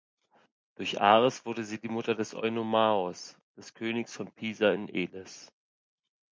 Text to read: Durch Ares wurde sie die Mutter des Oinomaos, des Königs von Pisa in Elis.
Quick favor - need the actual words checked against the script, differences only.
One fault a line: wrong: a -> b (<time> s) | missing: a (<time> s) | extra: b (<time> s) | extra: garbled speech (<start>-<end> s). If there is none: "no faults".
no faults